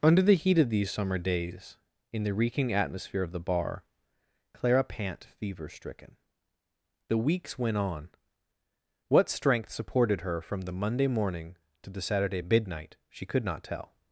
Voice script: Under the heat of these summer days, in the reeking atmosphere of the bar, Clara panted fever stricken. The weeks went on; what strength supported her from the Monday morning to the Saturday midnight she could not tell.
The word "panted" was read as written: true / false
false